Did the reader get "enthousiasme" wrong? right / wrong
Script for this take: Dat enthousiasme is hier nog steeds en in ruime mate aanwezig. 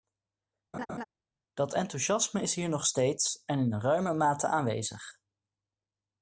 right